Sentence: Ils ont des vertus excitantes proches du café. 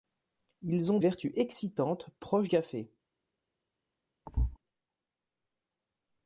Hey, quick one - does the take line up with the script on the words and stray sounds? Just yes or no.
no